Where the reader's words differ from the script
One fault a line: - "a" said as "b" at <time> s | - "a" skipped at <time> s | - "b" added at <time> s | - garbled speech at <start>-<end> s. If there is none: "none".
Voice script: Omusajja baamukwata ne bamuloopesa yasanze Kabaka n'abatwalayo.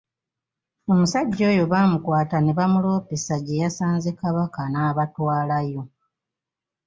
- "oyo" added at 1.5 s
- "gye" added at 3.5 s